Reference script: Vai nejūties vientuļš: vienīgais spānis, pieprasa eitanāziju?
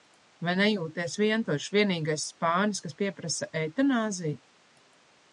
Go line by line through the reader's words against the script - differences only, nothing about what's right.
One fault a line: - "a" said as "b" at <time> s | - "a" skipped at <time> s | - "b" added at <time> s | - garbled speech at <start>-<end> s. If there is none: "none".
- "kas" added at 2.8 s